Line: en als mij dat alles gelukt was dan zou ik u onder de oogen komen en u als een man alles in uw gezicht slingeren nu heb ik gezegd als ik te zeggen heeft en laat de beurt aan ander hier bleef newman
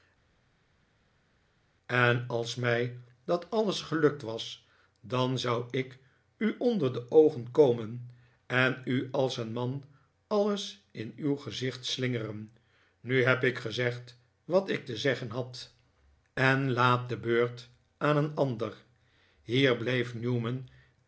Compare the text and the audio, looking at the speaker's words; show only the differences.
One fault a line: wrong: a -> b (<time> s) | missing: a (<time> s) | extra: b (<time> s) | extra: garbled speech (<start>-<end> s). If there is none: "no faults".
wrong: als -> wat (14.4 s)
wrong: heeft -> had (15.3 s)
extra: een (18.2 s)